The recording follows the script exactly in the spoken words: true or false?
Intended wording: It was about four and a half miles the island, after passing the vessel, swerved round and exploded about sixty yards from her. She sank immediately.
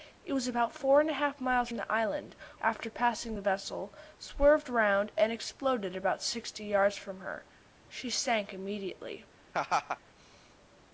true